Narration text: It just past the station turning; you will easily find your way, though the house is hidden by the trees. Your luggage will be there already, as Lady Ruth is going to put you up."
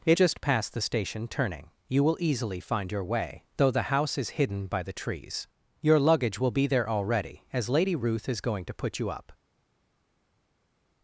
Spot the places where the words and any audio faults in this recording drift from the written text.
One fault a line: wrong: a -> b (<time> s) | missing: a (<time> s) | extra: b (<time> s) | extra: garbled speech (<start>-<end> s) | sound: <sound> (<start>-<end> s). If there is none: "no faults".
no faults